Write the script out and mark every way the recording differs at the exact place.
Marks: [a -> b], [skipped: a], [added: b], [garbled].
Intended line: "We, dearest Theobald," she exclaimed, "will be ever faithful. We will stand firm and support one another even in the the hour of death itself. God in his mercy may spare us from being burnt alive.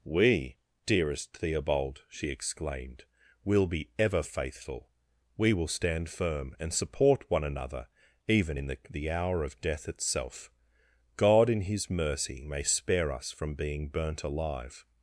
"We, dearest Theobald," she exclaimed, "will be ever faithful. We will stand firm and support one another even in the the hour of death itself. God in his mercy may spare us from being burnt alive.